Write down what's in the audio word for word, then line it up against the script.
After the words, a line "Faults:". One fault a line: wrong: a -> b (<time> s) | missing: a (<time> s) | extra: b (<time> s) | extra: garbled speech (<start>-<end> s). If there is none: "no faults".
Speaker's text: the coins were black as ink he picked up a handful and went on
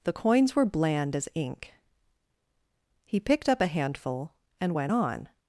the coins were bland as ink he picked up a handful and went on
Faults:
wrong: black -> bland (0.6 s)